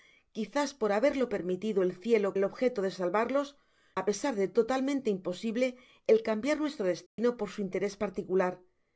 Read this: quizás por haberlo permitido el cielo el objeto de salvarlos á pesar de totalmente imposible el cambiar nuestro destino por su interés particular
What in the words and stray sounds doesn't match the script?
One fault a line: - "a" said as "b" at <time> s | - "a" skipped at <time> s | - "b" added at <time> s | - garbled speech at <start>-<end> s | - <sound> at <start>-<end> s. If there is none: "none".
- dropout at 7.1-7.2 s